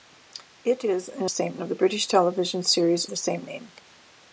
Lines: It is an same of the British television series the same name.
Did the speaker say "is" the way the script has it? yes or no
yes